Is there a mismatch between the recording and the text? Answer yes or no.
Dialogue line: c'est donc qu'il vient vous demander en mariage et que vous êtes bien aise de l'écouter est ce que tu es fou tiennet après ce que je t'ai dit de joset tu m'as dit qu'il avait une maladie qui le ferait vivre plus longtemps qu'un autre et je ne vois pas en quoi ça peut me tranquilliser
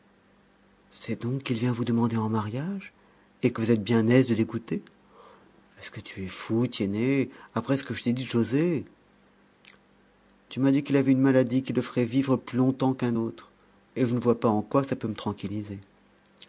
no